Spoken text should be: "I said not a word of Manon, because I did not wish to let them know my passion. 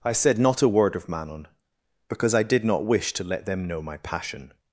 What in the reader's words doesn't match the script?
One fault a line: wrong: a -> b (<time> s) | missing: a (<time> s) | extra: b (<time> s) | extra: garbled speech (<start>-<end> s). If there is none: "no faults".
no faults